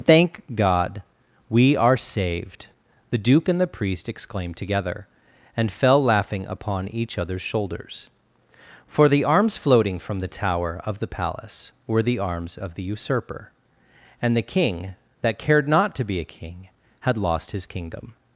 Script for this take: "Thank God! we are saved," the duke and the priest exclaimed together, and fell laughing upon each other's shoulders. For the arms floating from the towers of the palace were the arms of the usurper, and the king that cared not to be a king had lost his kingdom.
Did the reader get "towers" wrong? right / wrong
wrong